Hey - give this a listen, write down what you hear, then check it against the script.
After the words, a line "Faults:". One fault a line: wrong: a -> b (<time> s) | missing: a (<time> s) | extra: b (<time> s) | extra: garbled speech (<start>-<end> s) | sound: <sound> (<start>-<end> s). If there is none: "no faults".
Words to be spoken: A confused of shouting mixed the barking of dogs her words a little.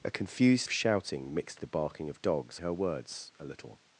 A confused of shouting mixed the barking of dogs her words a little.
Faults:
no faults